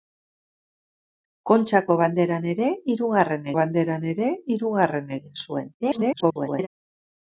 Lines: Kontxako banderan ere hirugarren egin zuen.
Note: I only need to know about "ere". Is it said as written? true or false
true